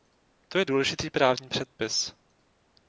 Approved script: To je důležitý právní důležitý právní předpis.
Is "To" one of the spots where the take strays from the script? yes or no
no